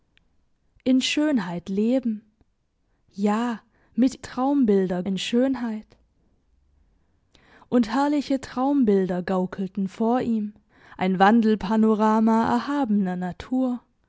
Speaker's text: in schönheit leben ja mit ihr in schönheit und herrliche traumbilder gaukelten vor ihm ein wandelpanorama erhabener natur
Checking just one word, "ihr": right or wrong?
wrong